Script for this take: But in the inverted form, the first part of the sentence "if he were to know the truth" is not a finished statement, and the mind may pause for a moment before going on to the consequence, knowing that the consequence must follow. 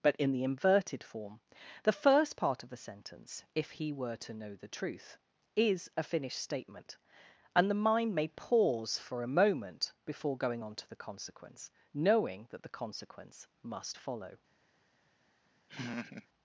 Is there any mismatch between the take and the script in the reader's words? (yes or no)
yes